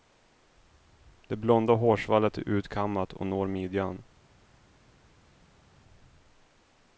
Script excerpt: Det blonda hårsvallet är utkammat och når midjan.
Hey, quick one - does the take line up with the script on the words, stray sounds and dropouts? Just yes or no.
yes